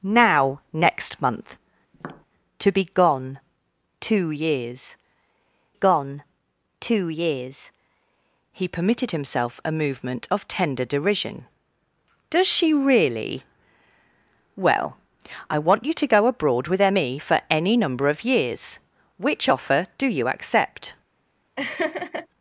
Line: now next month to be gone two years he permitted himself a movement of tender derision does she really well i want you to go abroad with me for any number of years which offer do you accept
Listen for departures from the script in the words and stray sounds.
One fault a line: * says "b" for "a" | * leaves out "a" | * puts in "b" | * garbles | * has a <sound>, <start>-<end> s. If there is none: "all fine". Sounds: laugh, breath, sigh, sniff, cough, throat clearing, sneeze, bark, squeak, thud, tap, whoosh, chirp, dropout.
* has a tap, 1.9-2.3 s
* puts in "gone two years"
* has a laugh, 21.6-22.3 s